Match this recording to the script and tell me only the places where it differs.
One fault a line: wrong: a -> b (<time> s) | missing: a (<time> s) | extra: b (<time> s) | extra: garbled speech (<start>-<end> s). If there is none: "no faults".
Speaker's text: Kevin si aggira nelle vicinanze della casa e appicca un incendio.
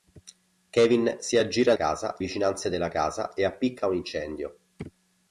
wrong: nelle -> casa (1.7 s)